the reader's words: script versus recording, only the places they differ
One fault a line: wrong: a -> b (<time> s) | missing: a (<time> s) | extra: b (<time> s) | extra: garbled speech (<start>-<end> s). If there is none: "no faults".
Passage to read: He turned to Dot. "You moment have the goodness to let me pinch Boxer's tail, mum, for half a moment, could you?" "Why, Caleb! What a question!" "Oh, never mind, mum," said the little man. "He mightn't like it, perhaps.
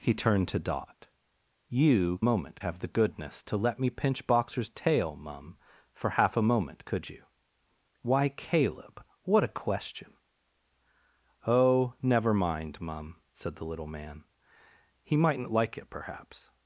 no faults